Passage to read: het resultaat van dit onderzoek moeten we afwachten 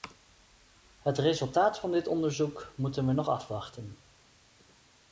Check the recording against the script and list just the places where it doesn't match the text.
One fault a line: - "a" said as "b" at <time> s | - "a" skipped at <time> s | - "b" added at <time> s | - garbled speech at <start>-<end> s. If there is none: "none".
- "nog" added at 3.1 s